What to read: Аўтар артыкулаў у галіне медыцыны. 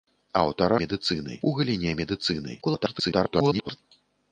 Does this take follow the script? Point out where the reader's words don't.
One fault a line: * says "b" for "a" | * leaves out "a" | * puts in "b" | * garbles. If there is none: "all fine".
* says "медыцыны" for "артыкулаў"
* garbles